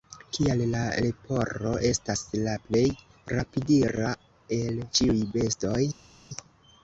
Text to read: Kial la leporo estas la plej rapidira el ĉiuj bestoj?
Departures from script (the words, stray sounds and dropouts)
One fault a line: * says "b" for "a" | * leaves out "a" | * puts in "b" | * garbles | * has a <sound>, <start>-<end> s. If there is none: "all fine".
all fine